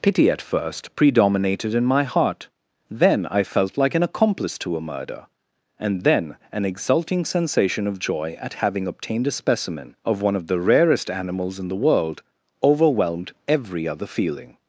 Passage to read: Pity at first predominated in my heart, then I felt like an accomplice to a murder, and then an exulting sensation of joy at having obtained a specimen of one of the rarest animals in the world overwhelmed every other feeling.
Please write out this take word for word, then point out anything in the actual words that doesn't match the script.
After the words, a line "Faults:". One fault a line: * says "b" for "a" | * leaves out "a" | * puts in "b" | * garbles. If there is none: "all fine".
Pity at first predominated in my heart, then I felt like an accomplice to a murder, and then an exulting sensation of joy at having obtained a specimen of one of the rarest animals in the world overwhelmed every other feeling.
Faults:
all fine